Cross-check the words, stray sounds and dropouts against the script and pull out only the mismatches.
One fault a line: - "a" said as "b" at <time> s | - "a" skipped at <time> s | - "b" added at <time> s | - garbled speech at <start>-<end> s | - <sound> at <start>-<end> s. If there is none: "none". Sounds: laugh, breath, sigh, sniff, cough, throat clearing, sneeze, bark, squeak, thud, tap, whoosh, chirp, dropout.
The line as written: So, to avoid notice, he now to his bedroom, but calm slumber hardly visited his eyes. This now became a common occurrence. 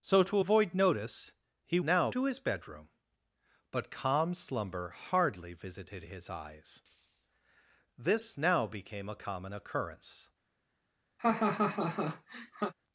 - laugh at 11.2-12.7 s